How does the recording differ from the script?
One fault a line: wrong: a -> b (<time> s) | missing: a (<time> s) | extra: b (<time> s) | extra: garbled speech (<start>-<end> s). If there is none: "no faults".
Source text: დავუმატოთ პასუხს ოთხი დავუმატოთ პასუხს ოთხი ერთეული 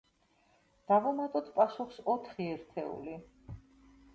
missing: დავუმატოთ პასუხს ოთხი (2.5 s)